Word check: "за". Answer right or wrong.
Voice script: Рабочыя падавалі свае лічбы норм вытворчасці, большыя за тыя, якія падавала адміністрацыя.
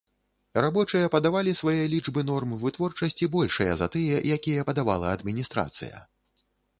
right